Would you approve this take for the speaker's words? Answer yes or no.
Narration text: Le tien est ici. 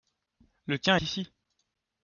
no